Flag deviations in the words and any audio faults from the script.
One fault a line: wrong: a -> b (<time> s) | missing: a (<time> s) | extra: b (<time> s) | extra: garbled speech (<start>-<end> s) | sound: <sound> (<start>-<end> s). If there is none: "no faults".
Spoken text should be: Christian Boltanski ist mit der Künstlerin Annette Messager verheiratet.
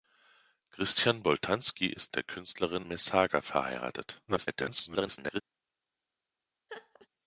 missing: mit (2.1 s)
missing: Annette (2.9 s)
extra: garbled speech (4.3-5.4 s)
sound: laugh (6.7-7.1 s)